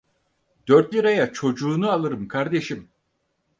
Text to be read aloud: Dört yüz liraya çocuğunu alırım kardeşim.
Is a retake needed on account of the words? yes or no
yes